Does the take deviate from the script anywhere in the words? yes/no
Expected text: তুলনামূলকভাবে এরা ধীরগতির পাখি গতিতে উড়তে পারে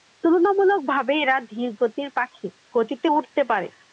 no